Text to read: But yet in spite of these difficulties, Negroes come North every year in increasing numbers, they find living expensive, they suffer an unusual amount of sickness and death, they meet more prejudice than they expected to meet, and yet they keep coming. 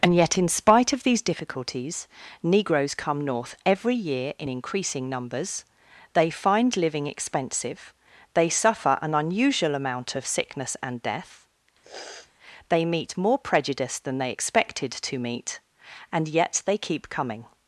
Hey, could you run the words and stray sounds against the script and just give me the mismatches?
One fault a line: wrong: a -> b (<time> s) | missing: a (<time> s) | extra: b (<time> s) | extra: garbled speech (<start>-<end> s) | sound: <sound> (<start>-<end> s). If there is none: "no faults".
wrong: But -> And (0.0 s)
sound: sniff (11.8-12.3 s)